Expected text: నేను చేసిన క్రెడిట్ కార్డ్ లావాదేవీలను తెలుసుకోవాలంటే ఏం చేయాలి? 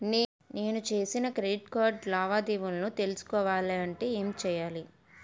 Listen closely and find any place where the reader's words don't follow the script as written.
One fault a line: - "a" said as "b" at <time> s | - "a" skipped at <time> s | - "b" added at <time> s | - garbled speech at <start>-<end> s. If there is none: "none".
none